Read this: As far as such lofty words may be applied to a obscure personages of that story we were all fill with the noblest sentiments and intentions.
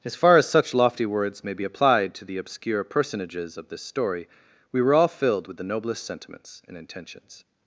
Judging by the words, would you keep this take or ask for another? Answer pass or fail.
fail